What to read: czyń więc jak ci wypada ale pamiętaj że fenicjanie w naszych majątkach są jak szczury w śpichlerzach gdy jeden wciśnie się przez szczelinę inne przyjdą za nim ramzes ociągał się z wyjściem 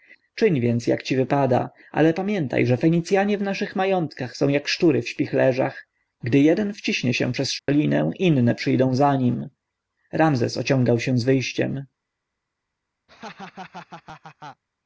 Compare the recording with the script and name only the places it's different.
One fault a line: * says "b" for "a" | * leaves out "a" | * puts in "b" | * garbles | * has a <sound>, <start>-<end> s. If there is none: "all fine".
* has a dropout, 7.6-7.7 s
* has a laugh, 13.1-14.6 s